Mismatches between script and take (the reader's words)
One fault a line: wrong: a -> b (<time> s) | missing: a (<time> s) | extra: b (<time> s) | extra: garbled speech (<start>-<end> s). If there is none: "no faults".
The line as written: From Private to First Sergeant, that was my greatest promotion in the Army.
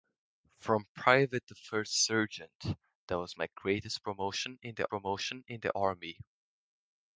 extra: promotion in the (4.9 s)